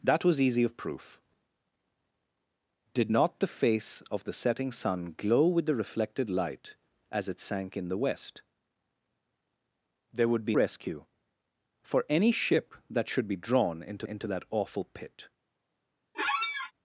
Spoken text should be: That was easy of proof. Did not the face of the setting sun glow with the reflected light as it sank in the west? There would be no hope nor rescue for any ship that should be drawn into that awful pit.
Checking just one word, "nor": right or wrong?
wrong